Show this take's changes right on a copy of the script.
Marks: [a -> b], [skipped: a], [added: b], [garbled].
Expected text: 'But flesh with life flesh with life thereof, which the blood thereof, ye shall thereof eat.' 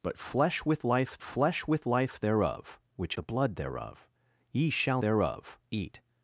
'But flesh with life flesh with life thereof, which the blood thereof, ye shall thereof eat.'